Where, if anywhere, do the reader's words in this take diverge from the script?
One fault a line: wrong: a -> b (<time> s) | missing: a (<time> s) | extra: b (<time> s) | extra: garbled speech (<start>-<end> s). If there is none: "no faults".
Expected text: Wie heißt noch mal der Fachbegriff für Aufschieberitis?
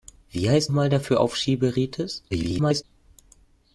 missing: noch (0.7 s)
missing: Fachbegriff (1.0 s)
extra: garbled speech (2.3-2.8 s)